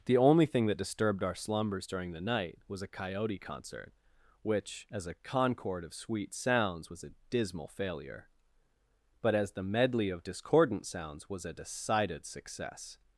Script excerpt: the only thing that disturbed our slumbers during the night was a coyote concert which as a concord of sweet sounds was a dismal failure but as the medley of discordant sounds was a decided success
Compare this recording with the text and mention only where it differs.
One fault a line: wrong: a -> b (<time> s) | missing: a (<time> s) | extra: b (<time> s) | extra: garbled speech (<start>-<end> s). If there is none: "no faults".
no faults